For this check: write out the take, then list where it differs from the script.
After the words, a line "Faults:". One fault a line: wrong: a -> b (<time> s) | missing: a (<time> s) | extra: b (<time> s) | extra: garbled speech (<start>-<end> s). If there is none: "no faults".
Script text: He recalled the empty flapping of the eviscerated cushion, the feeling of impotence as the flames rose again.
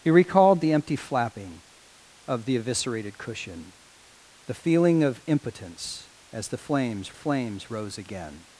He recalled the empty flapping of the eviscerated cushion, the feeling of impotence as the flames flames rose again.
Faults:
extra: flames (7.1 s)